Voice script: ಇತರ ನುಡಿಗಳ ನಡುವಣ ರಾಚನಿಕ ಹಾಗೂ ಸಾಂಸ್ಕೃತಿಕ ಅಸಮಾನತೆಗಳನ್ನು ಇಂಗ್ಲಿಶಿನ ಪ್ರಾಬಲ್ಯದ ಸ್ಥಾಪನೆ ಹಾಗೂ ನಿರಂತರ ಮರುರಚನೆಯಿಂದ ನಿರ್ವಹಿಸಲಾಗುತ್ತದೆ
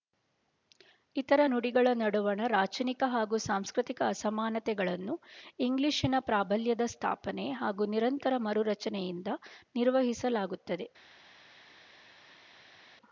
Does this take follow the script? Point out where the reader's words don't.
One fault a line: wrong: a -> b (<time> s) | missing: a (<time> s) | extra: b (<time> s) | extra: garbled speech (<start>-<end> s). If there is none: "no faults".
no faults